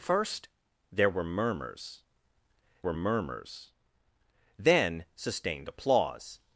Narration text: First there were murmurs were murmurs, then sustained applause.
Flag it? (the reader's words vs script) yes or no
no